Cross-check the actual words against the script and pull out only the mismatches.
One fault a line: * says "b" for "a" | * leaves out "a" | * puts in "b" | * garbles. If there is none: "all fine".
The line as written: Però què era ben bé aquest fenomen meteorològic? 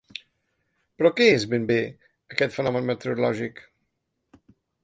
* says "és" for "era"